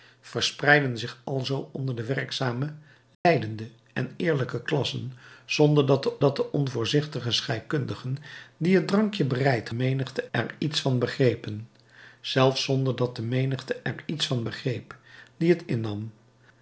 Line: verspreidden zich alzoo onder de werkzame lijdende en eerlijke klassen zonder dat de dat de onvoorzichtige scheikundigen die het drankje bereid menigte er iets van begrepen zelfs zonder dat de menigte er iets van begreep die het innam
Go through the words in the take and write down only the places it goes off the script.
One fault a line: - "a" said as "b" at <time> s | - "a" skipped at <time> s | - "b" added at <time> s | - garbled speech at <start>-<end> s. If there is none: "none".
none